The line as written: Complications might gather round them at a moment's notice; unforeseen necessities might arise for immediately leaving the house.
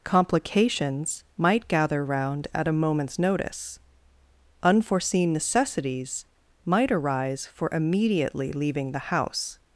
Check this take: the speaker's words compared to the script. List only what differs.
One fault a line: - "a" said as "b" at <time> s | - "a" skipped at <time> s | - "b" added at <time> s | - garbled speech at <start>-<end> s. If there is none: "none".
- "them" skipped at 2.5 s